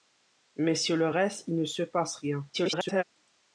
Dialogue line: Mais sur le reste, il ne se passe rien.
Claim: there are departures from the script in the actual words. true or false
true